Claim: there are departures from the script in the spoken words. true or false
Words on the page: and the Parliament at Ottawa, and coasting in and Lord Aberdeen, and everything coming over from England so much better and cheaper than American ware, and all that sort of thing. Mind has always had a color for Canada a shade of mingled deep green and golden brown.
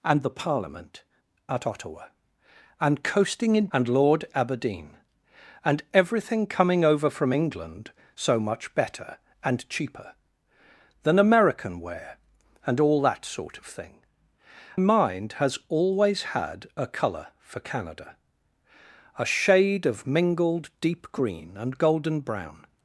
false